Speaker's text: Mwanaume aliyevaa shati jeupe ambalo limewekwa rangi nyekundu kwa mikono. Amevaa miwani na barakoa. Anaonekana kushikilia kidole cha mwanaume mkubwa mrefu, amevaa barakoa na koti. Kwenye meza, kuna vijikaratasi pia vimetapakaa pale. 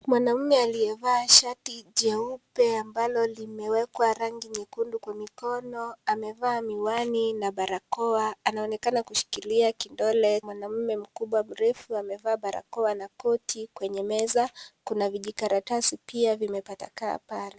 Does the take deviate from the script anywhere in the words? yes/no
yes